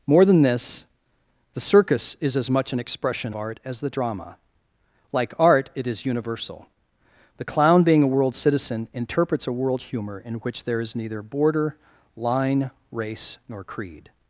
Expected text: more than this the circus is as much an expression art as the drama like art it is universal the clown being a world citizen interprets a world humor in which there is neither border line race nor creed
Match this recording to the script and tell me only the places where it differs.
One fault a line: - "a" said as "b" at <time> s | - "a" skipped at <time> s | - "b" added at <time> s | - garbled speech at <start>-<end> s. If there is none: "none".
none